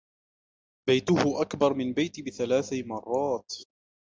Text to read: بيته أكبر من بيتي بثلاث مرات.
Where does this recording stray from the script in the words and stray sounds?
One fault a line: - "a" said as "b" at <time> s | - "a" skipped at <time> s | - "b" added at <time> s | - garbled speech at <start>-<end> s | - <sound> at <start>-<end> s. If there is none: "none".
none